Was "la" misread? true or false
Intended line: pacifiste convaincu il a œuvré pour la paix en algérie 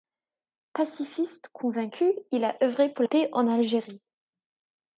true